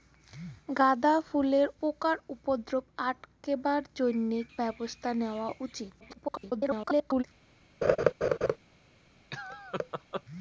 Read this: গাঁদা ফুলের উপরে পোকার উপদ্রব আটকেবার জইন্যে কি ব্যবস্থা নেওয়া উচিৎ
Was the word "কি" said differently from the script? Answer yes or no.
yes